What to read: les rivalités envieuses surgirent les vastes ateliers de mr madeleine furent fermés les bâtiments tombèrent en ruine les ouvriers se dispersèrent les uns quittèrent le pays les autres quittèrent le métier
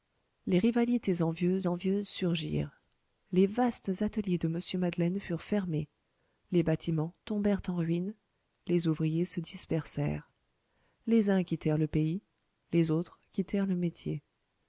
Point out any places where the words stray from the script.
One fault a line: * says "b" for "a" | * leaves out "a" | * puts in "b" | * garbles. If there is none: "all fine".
* puts in "envieuses"